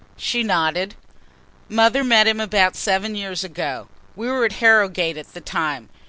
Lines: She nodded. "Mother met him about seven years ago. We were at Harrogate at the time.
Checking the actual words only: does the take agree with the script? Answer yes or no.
yes